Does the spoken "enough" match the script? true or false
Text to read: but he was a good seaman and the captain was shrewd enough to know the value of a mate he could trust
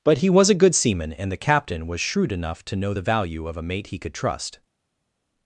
true